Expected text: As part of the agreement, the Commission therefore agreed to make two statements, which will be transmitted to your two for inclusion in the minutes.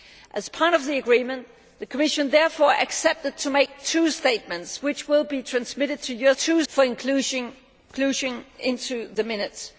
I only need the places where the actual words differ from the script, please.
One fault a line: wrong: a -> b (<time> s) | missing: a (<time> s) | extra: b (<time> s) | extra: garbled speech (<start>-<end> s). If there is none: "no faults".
no faults